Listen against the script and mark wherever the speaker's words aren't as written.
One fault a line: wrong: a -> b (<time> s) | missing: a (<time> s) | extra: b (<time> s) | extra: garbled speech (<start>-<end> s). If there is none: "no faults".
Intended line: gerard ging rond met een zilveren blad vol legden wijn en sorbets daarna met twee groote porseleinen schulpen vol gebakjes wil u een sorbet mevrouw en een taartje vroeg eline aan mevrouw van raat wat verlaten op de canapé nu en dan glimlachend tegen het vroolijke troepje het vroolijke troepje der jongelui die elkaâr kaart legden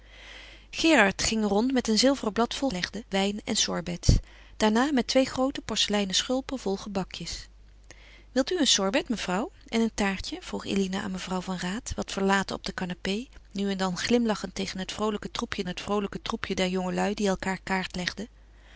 no faults